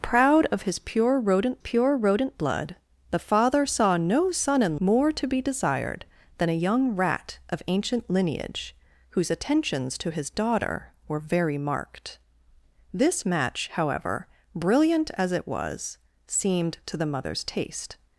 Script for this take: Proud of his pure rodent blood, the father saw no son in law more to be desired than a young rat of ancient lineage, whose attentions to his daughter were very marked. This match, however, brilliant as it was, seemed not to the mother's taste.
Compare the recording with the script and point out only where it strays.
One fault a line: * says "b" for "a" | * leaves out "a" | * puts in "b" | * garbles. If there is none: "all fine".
* puts in "pure rodent"
* leaves out "law"
* leaves out "not"